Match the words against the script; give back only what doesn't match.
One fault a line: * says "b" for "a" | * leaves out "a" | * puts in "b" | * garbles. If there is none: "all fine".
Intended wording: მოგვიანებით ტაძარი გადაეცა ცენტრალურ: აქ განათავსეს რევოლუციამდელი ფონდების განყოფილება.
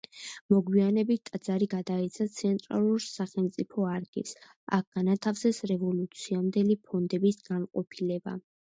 * puts in "სახელმწიფო არქივს"